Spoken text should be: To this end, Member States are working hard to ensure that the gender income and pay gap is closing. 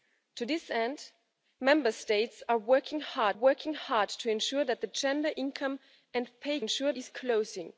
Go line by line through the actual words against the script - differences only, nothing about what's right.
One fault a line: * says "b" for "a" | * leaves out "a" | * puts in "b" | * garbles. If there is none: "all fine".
* puts in "working hard"
* says "ensure" for "gap"